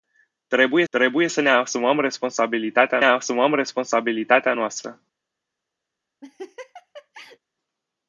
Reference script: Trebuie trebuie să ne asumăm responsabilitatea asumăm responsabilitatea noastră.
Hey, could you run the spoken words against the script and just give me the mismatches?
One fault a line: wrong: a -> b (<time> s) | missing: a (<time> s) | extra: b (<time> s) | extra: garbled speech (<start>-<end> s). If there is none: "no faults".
no faults